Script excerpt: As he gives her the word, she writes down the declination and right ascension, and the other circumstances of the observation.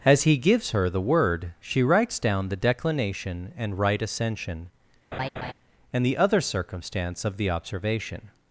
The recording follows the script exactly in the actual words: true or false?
false